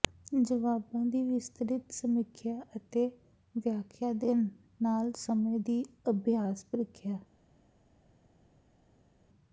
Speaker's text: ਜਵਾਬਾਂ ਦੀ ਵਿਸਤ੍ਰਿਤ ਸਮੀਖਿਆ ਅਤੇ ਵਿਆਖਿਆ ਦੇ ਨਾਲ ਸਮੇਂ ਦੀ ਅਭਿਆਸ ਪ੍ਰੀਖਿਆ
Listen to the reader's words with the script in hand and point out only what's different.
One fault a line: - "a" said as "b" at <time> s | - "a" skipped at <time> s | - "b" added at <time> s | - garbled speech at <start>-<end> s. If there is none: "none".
none